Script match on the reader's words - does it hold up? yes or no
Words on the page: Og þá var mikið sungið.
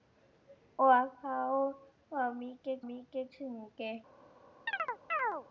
no